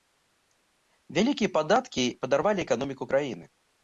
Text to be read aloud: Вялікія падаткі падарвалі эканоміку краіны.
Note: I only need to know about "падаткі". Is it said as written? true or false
true